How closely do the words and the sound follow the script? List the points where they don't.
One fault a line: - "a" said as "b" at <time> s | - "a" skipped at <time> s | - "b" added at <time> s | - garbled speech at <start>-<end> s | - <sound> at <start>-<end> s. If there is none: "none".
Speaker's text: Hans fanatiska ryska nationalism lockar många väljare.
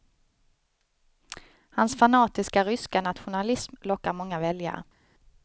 none